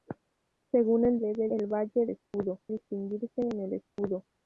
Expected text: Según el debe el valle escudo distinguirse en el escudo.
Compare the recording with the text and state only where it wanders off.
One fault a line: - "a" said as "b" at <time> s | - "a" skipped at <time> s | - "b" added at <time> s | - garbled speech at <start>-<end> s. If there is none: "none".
none